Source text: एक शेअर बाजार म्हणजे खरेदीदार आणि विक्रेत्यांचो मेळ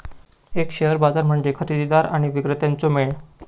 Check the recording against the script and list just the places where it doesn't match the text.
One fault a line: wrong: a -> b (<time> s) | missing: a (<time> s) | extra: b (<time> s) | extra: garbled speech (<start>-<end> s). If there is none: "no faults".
no faults